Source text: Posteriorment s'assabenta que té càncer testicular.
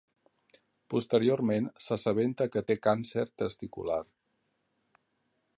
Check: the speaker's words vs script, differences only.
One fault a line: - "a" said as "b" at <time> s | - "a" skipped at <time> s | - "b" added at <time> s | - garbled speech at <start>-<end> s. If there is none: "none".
none